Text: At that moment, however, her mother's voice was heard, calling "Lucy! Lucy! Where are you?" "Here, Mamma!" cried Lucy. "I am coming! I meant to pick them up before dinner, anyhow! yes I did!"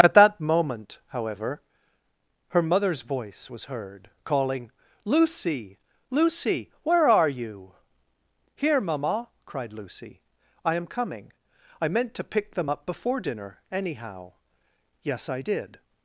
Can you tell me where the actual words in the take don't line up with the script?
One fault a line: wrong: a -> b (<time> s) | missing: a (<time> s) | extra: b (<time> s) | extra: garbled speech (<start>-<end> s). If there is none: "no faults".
no faults